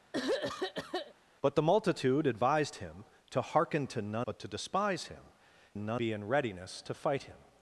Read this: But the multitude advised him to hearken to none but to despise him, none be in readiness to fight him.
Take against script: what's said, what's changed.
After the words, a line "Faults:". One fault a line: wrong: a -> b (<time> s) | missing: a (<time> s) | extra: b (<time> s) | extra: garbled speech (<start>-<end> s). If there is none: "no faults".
But the multitude advised him to hearken to none but to despise him, none be in readiness to fight him.
Faults:
no faults